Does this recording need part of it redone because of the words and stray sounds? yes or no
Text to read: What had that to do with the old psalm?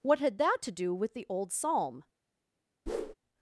yes